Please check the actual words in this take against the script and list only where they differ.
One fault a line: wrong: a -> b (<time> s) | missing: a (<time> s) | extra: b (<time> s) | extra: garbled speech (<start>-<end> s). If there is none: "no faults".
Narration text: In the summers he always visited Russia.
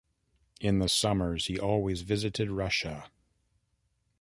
no faults